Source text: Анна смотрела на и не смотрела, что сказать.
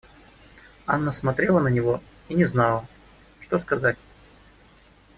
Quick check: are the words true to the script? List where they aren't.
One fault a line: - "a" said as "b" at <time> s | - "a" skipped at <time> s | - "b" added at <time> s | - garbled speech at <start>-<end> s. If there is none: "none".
- "него" added at 1.7 s
- "смотрела" said as "знала" at 2.5 s